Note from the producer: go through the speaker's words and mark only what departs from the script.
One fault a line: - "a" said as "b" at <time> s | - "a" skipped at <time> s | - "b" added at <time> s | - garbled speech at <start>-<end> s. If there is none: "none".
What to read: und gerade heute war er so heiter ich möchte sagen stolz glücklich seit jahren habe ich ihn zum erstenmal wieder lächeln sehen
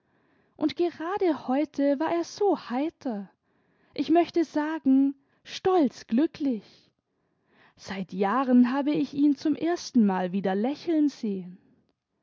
none